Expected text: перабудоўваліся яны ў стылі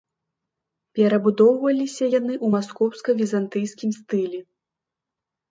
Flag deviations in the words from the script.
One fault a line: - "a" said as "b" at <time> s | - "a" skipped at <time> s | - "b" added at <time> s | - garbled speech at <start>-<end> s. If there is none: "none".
- "маскоўска візантыйскім" added at 2.5 s